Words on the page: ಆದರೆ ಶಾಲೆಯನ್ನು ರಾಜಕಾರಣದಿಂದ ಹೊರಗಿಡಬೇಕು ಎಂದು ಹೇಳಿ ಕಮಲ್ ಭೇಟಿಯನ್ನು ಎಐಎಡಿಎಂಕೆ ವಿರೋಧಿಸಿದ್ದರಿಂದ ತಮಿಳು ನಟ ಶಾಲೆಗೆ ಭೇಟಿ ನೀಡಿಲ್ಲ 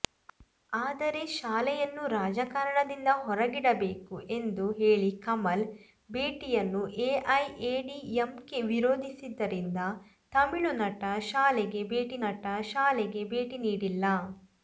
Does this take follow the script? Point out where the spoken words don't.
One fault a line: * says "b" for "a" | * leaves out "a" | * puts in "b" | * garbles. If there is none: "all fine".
* puts in "ನಟ ಶಾಲೆಗೆ ಭೇಟಿ"